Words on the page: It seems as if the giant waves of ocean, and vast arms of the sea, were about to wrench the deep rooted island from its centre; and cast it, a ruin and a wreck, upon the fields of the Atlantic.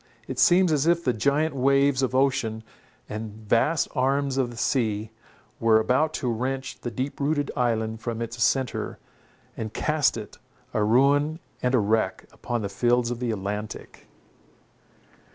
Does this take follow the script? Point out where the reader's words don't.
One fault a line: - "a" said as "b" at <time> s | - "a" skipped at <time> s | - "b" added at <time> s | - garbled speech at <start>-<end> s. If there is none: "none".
none